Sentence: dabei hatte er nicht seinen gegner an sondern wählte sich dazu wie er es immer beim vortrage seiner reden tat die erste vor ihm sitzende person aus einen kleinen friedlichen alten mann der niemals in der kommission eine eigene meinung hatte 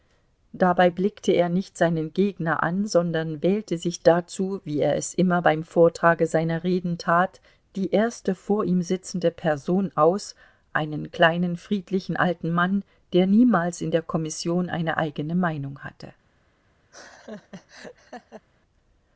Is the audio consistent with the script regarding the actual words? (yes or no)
no